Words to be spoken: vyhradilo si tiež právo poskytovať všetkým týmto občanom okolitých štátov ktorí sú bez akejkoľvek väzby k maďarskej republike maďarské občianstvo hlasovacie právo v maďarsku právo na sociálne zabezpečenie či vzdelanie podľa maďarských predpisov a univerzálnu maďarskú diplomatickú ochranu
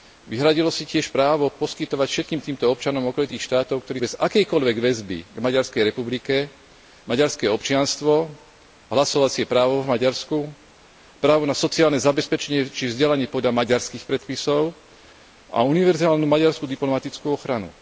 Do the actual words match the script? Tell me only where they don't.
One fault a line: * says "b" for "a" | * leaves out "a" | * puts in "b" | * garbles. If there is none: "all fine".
* leaves out "sú"